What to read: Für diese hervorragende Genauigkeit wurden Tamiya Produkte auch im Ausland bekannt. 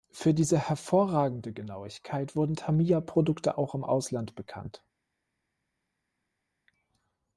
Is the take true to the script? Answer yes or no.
yes